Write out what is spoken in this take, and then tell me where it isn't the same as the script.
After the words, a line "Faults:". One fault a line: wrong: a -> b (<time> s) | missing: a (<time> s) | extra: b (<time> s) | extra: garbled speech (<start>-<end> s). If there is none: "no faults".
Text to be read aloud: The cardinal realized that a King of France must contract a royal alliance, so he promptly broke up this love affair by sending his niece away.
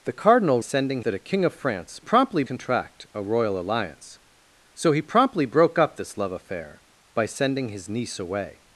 The cardinal sending that a King of France promptly contract a royal alliance, so he promptly broke up this love affair by sending his niece away.
Faults:
wrong: realized -> sending (0.6 s)
wrong: must -> promptly (2.0 s)